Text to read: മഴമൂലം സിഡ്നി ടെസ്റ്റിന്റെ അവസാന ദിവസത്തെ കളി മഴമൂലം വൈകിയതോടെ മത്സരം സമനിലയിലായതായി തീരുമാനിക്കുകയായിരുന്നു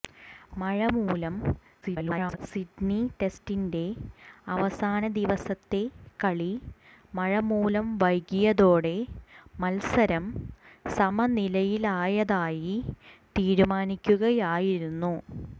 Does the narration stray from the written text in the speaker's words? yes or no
yes